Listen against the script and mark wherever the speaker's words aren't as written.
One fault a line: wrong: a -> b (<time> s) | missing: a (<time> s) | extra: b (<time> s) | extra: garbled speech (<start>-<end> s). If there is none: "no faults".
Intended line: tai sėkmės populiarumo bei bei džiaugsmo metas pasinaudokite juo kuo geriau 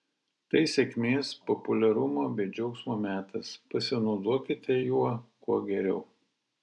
missing: bei (2.5 s)